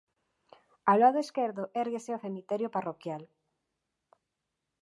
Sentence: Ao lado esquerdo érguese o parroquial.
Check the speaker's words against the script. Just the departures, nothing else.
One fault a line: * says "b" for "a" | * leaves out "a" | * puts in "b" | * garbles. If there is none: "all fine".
* puts in "cemiterio"